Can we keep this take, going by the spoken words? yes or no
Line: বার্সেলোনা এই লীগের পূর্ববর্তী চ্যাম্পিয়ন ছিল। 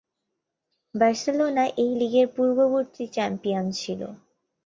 yes